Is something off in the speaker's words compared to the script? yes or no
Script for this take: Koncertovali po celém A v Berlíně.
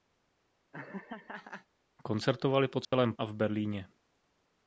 no